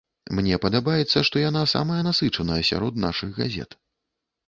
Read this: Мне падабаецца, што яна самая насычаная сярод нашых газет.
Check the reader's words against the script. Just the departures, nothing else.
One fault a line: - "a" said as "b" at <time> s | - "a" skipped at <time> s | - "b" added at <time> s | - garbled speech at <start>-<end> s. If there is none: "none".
none